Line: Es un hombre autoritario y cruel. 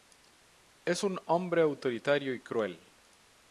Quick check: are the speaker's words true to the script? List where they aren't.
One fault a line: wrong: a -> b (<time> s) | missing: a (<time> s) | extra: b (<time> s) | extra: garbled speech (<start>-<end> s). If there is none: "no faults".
no faults